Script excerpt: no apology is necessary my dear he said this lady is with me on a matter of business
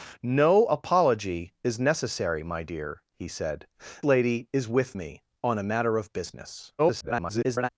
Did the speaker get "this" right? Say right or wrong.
wrong